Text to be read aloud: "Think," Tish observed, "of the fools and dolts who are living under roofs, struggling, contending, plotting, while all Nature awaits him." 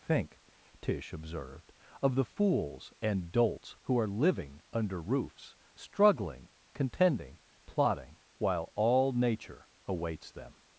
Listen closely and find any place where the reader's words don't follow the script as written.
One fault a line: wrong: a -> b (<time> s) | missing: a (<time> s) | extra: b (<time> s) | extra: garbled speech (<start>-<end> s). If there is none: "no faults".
wrong: him -> them (10.3 s)